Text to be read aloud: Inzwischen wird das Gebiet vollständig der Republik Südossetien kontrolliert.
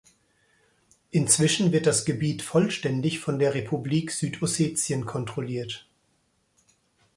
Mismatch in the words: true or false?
true